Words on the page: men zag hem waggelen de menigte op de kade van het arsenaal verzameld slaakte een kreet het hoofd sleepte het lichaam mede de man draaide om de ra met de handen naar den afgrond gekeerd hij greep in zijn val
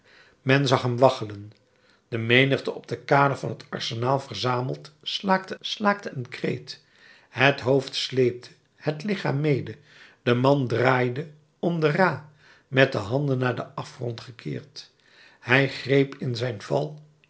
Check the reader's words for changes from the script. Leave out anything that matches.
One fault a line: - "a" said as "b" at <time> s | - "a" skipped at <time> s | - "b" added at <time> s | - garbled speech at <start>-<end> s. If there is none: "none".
- "slaakte" added at 5.6 s